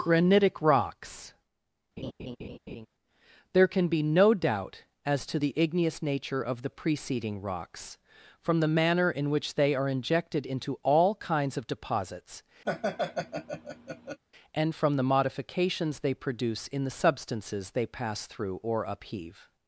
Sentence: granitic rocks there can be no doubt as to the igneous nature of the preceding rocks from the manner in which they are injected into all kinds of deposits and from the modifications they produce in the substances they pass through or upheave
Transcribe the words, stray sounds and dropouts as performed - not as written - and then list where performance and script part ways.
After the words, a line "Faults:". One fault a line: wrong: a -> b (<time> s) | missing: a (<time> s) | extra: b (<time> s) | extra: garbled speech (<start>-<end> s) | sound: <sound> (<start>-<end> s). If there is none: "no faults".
granitic rocks there can be no doubt as to the igneous nature of the preceding rocks from the manner in which they are injected into all kinds of deposits and from the modifications they produce in the substances they pass through or upheave
Faults:
sound: laugh (2.0-2.9 s)
sound: laugh (12.6-14.2 s)